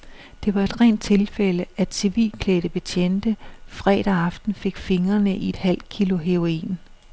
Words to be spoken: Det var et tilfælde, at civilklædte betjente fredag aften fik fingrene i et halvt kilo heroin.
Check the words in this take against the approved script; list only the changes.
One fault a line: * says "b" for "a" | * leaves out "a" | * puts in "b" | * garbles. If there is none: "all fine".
* puts in "rent"